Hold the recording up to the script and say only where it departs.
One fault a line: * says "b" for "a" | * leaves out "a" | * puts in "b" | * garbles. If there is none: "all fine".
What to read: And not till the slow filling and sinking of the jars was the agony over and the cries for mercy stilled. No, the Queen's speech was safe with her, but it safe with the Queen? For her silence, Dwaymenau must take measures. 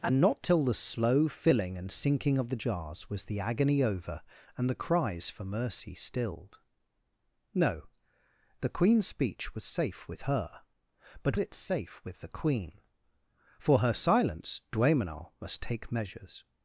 all fine